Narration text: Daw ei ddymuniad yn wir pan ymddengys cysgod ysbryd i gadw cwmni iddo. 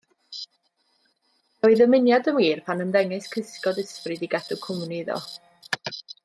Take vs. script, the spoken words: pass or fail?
pass